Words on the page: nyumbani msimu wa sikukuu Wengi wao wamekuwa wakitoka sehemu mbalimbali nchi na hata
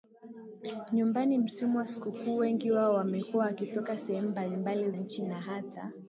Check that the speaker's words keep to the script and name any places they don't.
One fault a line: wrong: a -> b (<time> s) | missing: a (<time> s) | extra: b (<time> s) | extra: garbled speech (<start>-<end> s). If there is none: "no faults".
no faults